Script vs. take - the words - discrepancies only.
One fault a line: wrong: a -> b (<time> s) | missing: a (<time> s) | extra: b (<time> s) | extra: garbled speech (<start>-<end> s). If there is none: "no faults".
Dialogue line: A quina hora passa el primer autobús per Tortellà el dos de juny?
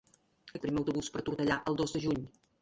missing: quina hora passa (0.6 s)